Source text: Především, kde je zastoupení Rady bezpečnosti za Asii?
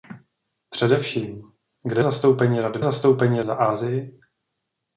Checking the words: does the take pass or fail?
fail